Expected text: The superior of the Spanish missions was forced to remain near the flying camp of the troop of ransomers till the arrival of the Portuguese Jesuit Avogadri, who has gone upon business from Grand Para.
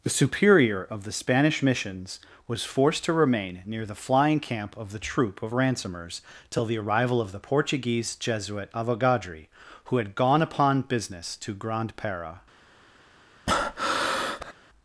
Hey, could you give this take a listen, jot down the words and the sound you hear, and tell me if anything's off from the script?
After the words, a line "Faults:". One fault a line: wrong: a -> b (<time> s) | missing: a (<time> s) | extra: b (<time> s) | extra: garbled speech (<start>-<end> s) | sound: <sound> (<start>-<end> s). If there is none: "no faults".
The superior of the Spanish missions was forced to remain near the flying camp of the troop of ransomers till the arrival of the Portuguese Jesuit Avogadri, who had gone upon business to Grand Para.
Faults:
wrong: has -> had (10.0 s)
wrong: from -> to (11.4 s)
sound: breath (13.5-14.5 s)